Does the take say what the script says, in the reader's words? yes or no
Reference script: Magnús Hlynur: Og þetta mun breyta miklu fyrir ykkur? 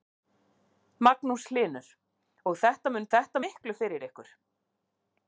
no